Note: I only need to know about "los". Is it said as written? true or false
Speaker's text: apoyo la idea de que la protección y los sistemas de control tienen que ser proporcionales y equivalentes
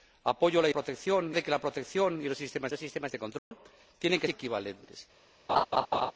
true